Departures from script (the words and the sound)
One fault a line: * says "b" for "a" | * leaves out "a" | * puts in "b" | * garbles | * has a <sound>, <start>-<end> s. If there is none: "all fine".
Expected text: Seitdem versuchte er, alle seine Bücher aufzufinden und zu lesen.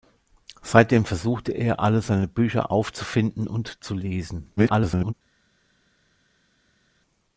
* garbles